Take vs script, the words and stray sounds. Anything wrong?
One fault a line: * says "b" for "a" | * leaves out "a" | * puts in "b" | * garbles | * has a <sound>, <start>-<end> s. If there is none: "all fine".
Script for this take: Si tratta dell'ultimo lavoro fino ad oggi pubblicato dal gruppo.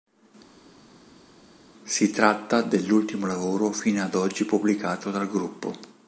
all fine